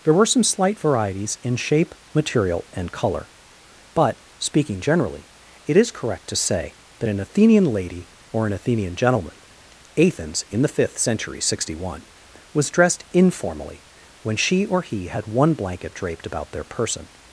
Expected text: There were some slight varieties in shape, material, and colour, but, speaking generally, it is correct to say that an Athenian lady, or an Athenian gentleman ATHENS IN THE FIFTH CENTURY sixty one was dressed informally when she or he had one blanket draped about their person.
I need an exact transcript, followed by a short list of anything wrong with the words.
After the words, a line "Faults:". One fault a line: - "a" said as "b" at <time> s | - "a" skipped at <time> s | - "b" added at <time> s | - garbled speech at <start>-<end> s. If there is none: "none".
There were some slight varieties in shape, material, and colour, but, speaking generally, it is correct to say that an Athenian lady, or an Athenian gentleman ATHENS IN THE FIFTH CENTURY sixty one was dressed informally when she or he had one blanket draped about their person.
Faults:
none